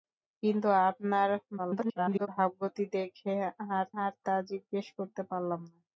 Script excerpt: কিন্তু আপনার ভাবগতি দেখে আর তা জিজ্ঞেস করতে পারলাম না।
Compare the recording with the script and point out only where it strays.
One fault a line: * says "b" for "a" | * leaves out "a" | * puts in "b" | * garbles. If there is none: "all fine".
* garbles
* puts in "আর"